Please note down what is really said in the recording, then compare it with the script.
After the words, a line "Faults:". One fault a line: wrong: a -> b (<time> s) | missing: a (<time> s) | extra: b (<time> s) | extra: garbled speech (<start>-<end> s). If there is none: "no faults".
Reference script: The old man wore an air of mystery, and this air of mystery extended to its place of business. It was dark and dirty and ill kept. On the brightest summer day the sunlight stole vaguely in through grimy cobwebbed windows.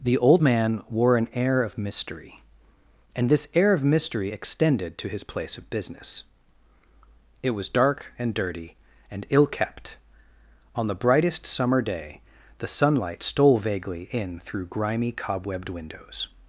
The old man wore an air of mystery, and this air of mystery extended to his place of business. It was dark and dirty and ill kept. On the brightest summer day the sunlight stole vaguely in through grimy cobwebbed windows.
Faults:
wrong: its -> his (5.1 s)